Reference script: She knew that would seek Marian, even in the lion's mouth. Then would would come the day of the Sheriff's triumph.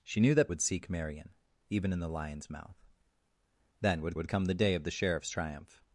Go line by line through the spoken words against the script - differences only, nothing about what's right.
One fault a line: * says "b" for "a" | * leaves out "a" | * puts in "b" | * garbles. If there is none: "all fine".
all fine